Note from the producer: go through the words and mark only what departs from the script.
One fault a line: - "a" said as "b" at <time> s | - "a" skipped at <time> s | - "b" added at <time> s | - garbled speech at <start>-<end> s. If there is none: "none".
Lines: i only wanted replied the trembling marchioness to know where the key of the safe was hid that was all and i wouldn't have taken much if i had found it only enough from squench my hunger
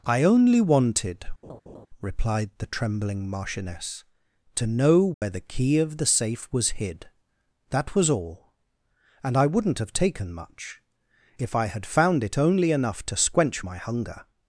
- "from" said as "to" at 13.0 s